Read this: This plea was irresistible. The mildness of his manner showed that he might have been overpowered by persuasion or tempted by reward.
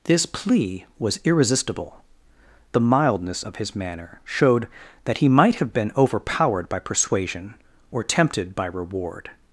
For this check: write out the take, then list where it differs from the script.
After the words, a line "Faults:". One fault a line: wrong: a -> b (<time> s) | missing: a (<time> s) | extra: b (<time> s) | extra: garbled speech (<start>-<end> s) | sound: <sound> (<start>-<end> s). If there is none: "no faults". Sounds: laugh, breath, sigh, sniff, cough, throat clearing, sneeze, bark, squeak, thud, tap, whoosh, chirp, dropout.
This plea was irresistible. The mildness of his manner showed that he might have been overpowered by persuasion or tempted by reward.
Faults:
no faults